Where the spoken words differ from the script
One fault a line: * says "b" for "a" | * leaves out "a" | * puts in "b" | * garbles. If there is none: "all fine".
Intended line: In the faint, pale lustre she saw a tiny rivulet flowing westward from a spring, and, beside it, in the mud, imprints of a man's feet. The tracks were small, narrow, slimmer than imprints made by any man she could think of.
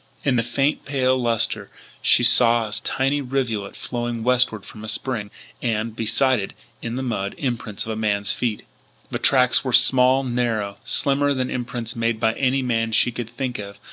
all fine